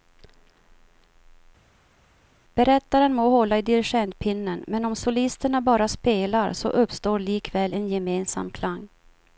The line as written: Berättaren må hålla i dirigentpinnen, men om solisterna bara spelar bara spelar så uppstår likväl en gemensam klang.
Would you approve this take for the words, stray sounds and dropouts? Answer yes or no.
no